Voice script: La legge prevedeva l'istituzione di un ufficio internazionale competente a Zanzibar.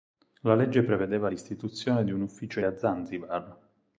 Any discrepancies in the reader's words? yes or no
yes